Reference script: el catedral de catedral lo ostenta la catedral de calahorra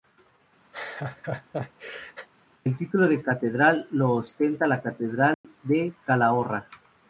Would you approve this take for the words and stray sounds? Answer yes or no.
no